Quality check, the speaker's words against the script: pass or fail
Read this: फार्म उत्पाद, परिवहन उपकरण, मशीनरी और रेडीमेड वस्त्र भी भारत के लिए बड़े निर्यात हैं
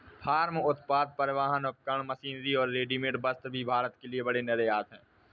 pass